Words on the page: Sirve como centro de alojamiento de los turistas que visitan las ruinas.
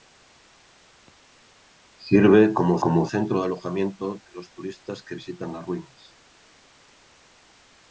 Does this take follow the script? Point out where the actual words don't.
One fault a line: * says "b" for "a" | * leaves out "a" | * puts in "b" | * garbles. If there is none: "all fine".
* puts in "como"